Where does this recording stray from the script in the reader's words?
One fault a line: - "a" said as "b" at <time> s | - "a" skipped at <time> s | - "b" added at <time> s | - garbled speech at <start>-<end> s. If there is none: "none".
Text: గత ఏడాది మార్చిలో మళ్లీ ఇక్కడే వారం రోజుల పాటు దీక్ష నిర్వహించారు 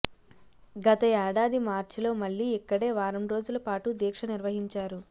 none